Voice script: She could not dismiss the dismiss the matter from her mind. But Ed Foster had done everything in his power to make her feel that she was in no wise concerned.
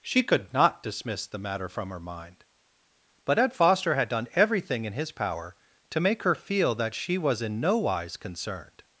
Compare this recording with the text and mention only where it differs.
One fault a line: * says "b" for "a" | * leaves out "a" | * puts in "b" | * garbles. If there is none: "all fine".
* leaves out "dismiss the"